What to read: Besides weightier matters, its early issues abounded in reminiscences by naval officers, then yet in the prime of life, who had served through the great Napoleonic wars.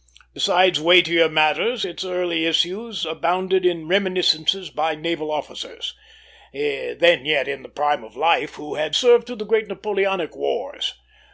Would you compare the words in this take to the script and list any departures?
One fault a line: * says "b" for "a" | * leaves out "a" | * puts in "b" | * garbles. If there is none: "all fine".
all fine